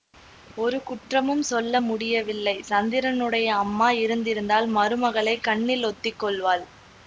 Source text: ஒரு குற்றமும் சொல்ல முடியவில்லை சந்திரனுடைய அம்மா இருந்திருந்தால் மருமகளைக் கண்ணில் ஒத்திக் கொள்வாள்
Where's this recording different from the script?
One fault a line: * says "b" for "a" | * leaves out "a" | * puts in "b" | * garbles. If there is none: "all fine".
all fine